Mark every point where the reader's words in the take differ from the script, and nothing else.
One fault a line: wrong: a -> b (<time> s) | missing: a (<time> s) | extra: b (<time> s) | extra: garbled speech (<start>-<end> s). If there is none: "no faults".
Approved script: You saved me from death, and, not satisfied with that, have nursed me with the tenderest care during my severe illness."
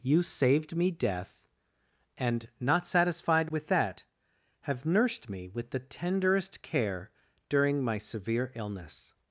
missing: from (0.9 s)